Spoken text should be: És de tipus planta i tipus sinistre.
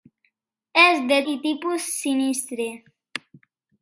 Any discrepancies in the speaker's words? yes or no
yes